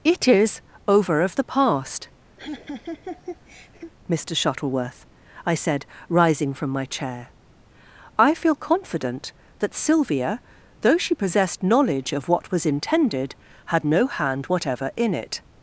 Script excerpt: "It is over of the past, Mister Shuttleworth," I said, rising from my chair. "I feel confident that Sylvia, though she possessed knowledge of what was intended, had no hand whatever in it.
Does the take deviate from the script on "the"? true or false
false